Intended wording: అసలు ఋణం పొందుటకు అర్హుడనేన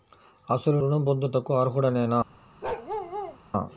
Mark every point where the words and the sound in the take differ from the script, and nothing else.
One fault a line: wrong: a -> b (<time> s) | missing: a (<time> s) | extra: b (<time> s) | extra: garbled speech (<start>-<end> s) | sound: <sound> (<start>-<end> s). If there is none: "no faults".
sound: bark (2.6-3.4 s)